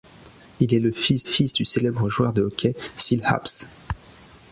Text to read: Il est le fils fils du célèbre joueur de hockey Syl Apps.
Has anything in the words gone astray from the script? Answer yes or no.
no